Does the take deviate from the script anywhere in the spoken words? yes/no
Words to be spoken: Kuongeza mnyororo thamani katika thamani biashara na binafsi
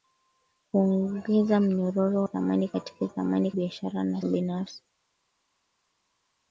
no